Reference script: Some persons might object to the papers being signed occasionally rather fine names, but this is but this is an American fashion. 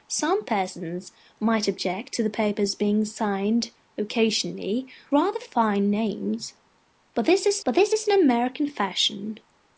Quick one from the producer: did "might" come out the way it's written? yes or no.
yes